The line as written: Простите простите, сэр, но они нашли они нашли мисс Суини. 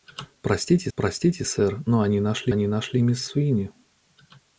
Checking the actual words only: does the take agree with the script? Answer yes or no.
yes